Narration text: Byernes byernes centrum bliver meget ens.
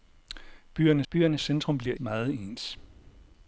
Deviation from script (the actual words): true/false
false